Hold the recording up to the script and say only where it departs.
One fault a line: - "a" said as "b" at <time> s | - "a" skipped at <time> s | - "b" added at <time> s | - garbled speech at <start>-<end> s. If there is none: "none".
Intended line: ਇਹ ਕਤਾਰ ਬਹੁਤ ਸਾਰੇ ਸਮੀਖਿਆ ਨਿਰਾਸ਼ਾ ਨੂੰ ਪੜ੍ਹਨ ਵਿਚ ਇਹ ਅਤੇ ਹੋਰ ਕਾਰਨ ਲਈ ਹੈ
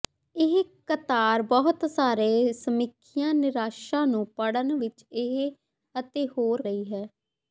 - "ਕਾਰਨ" skipped at 6.6 s